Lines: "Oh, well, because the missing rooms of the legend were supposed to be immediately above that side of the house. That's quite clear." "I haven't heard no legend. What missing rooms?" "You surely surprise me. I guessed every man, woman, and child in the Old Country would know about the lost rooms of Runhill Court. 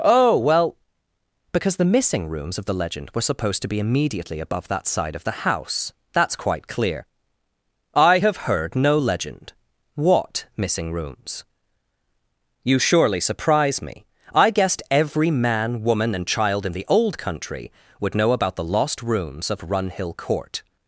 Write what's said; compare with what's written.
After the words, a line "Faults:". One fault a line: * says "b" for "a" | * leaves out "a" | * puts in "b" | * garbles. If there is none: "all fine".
"Oh, well, because the missing rooms of the legend were supposed to be immediately above that side of the house. That's quite clear." "I have heard no legend. What missing rooms?" "You surely surprise me. I guessed every man, woman, and child in the Old Country would know about the lost rooms of Runhill Court.
Faults:
* says "have" for "haven't"